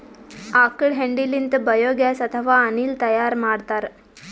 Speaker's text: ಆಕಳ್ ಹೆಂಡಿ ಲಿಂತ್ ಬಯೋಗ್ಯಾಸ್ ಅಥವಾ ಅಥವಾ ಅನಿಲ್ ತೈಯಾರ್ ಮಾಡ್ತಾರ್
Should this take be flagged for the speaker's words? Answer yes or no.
yes